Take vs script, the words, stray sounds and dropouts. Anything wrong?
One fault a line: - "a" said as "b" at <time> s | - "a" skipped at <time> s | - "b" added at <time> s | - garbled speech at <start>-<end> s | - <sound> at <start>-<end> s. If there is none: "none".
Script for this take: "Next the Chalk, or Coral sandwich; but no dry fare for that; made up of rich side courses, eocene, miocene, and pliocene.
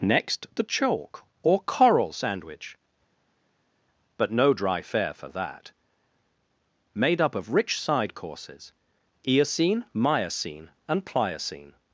none